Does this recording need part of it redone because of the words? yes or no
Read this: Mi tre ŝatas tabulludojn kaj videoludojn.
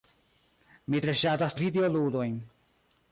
yes